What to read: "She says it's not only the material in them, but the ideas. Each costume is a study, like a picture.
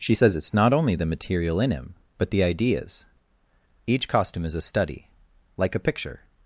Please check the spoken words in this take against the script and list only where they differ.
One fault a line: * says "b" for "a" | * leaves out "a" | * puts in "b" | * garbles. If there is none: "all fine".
* says "him" for "them"